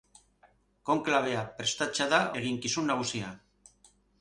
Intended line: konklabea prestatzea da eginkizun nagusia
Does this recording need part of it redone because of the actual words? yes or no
no